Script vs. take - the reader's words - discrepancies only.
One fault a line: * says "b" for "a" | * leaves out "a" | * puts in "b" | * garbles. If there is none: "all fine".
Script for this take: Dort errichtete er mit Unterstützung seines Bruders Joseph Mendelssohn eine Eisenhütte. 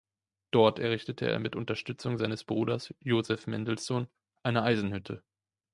all fine